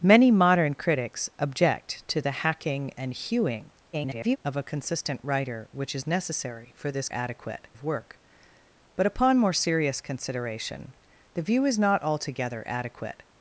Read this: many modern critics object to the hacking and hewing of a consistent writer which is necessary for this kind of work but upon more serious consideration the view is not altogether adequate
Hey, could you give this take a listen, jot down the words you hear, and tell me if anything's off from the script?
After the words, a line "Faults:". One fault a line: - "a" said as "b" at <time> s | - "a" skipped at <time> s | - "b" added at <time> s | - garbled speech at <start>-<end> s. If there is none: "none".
many modern critics object to the hacking and hewing [garbled] of a consistent writer which is necessary for this adequate of work but upon more serious consideration the view is not altogether adequate
Faults:
- garbled speech at 3.9-4.4 s
- "kind" said as "adequate" at 7.1 s